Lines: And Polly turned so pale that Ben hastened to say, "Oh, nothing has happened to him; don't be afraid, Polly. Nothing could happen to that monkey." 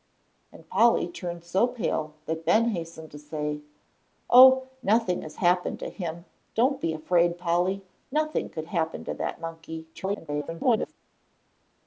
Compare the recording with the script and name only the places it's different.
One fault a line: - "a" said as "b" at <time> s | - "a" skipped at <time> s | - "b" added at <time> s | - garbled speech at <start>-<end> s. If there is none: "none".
- garbled speech at 9.9-10.9 s